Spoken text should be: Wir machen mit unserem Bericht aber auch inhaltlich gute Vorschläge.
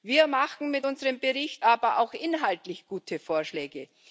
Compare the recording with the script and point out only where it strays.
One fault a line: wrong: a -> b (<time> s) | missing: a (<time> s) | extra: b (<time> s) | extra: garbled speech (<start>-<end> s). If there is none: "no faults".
no faults